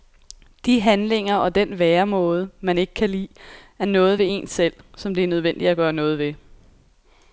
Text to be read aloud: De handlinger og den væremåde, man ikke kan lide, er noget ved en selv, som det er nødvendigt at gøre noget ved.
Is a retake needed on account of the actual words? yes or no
no